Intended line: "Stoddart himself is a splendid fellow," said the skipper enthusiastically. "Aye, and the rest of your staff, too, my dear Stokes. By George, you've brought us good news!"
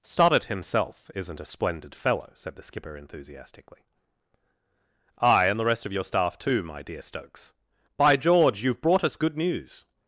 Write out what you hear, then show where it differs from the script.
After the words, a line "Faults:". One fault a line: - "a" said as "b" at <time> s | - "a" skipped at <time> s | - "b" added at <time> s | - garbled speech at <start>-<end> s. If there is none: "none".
"Stoddart himself isn't a splendid fellow," said the skipper enthusiastically. "Aye, and the rest of your staff, too, my dear Stokes. By George, you've brought us good news!"
Faults:
- "is" said as "isn't" at 1.1 s